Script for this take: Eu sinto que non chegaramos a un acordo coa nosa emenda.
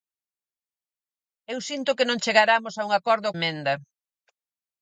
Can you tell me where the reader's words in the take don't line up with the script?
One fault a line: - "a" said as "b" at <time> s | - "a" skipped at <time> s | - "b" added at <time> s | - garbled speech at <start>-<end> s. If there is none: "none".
- "coa nosa" skipped at 3.3 s